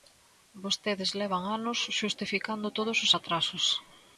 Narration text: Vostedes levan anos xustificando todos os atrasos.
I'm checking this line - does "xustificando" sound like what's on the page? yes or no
yes